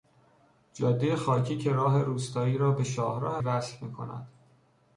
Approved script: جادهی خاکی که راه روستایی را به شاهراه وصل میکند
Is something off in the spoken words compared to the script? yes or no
no